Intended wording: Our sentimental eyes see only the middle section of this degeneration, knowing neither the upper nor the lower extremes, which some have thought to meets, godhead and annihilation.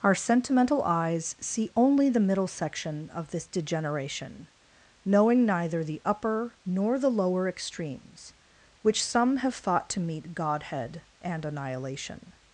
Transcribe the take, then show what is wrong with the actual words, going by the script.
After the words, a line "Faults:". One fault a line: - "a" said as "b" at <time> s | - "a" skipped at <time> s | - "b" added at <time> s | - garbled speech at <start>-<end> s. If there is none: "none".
Our sentimental eyes see only the middle section of this degeneration, knowing neither the upper nor the lower extremes, which some have thought to meet, godhead and annihilation.
Faults:
- "meets" said as "meet" at 10.0 s